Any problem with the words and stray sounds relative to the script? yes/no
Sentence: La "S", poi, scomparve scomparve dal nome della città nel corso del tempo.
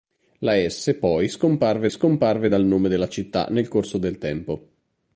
no